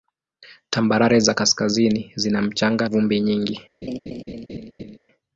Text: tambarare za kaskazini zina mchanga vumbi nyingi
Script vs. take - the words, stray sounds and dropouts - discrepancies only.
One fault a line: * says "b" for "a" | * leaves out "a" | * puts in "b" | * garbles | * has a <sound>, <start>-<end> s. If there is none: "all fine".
* has a laugh, 3.8-5.0 s